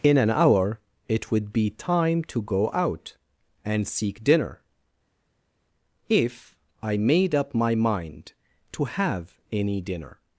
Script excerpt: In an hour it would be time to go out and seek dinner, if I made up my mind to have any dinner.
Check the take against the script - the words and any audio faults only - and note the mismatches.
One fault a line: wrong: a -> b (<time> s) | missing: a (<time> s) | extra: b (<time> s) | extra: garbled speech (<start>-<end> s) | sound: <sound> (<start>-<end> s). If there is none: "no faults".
no faults